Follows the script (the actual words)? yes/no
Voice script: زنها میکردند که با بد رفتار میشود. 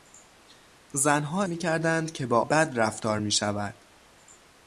yes